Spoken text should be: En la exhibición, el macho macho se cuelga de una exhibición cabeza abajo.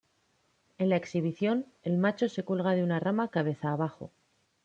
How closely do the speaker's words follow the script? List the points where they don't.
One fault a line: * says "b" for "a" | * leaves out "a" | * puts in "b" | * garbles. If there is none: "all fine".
* leaves out "macho"
* says "rama" for "exhibición"